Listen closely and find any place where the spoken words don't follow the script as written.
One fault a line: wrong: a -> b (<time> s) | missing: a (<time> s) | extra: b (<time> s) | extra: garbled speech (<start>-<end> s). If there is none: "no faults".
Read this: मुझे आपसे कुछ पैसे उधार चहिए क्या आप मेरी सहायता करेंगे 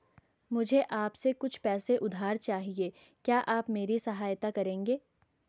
no faults